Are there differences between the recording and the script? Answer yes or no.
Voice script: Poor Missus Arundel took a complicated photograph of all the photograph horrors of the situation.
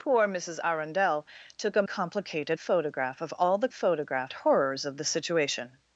no